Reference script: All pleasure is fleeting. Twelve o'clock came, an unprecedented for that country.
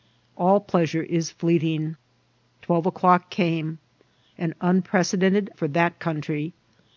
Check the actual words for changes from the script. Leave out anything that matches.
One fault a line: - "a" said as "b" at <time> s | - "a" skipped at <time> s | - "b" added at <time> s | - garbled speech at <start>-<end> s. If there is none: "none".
none